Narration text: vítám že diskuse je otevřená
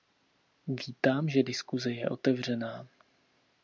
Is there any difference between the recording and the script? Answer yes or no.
no